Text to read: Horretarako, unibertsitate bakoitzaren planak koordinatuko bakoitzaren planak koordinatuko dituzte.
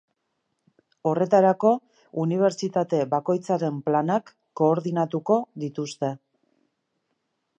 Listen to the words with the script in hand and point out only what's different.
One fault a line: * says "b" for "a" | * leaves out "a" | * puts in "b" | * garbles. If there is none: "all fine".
* leaves out "bakoitzaren planak koordinatuko"